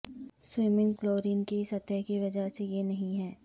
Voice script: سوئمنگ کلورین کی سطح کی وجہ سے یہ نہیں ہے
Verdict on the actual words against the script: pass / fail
pass